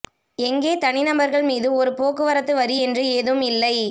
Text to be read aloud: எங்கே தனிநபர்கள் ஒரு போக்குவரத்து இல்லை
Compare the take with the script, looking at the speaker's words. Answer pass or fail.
fail